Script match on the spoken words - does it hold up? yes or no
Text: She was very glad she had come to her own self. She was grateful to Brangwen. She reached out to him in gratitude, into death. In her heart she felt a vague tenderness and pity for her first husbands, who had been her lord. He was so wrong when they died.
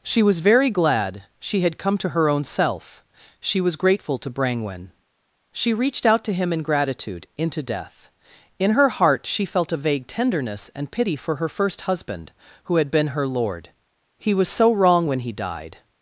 no